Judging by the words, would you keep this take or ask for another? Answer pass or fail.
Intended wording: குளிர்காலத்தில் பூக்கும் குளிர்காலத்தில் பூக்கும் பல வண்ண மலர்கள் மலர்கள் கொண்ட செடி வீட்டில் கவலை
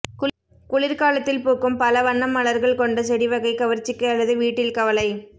fail